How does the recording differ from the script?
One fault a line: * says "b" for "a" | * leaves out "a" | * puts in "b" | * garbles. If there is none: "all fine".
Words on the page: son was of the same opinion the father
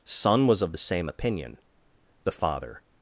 all fine